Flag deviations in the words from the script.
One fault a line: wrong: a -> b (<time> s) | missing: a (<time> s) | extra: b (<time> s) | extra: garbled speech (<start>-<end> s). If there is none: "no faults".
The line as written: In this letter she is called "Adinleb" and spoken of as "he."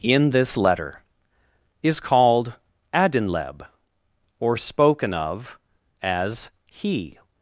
missing: she (1.0 s)
wrong: and -> or (4.4 s)